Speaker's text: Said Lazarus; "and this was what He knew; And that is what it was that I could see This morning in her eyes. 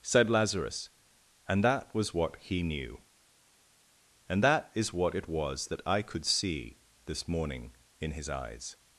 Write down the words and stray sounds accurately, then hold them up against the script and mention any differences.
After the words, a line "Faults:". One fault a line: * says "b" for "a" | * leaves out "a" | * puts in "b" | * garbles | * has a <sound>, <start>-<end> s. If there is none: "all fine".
Said Lazarus; "and that was what He knew; And that is what it was that I could see This morning in his eyes.
Faults:
* says "that" for "this"
* says "his" for "her"